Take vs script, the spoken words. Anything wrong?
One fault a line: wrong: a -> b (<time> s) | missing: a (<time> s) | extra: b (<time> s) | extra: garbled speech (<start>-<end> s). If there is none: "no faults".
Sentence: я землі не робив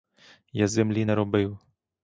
no faults